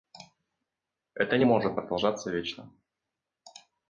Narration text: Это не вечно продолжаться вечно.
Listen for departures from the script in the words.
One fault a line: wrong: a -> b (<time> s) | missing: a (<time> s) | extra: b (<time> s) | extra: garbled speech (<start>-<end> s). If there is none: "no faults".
wrong: вечно -> может (1.4 s)